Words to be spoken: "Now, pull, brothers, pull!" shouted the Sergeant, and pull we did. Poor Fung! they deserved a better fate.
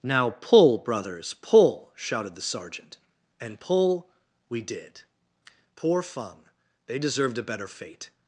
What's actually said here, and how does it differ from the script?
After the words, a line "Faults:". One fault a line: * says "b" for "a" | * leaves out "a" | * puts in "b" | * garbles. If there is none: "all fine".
"Now, pull, brothers, pull!" shouted the Sergeant, and pull we did. Poor Fung! they deserved a better fate.
Faults:
all fine